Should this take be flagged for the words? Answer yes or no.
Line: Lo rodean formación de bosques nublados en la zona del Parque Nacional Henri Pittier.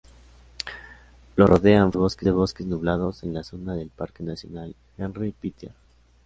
yes